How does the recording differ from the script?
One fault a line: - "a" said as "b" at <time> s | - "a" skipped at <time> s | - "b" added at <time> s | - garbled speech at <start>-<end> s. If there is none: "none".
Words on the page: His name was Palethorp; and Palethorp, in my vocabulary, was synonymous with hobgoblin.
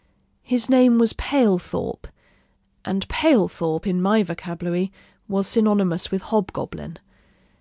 none